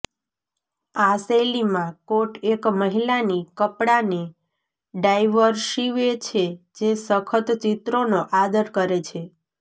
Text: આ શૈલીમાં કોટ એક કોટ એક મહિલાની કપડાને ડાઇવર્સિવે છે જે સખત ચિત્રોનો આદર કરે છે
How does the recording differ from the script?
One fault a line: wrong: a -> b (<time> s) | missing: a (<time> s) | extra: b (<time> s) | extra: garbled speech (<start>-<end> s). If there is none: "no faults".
missing: કોટ એક (2.6 s)